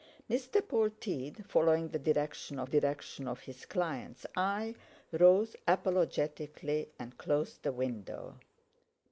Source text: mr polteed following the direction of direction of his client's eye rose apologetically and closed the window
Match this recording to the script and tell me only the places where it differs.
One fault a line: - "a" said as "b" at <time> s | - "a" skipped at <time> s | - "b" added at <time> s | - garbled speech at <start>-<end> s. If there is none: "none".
none